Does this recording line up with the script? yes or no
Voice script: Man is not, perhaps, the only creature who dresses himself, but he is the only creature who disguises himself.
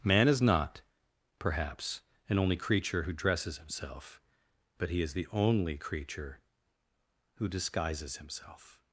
no